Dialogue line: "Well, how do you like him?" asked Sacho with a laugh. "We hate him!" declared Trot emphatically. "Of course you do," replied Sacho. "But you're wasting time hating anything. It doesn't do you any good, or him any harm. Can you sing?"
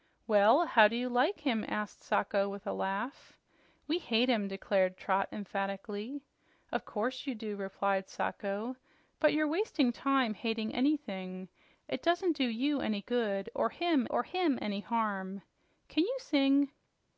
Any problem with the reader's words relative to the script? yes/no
yes